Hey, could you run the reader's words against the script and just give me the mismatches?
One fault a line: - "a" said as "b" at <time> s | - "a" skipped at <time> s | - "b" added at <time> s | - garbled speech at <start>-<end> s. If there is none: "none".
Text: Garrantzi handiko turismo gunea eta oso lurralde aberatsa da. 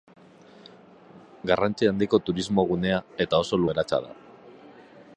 - "lurralde" skipped at 3.6 s